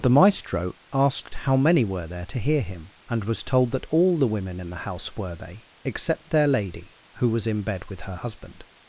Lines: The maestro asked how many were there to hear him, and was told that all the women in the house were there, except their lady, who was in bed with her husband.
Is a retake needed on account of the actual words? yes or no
yes